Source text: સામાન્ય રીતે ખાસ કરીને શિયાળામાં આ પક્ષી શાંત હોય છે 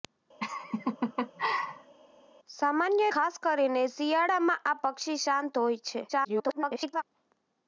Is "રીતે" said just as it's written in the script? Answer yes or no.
no